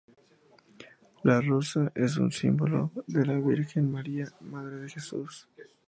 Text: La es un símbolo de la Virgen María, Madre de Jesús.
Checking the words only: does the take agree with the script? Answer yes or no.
no